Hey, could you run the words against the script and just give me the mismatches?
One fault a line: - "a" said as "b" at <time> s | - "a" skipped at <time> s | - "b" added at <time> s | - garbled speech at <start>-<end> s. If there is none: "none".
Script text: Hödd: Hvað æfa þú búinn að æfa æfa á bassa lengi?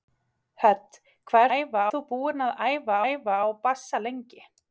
none